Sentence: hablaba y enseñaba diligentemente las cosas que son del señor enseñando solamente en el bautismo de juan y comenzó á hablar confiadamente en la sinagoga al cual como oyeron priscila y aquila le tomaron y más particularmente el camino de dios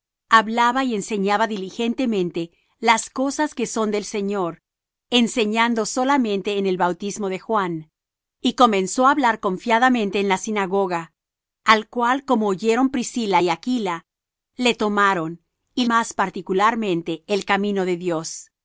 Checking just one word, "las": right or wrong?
right